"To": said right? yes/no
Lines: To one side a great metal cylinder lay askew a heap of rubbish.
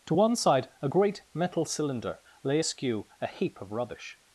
yes